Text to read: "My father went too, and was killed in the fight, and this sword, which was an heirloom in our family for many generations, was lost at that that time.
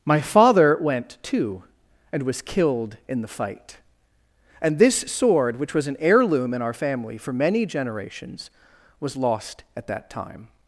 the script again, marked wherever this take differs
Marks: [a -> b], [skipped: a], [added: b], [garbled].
"My father went too, and was killed in the fight, and this sword, which was an heirloom in our family for many generations, was lost at that [skipped: that] time.